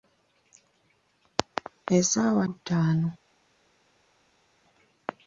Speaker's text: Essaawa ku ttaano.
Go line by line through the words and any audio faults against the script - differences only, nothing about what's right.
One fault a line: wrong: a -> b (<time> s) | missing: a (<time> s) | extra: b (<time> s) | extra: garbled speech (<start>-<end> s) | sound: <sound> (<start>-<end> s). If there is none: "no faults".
no faults